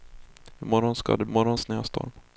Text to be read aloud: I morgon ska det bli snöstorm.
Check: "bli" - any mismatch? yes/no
yes